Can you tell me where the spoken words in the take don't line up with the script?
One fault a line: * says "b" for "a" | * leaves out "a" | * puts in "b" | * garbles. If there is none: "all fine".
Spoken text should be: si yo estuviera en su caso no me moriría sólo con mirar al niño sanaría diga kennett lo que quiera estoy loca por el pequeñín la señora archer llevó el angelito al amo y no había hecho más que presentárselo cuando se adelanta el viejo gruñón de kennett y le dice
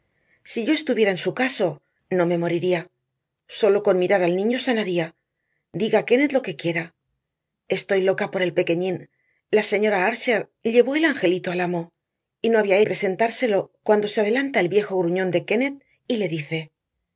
* leaves out "hecho más que"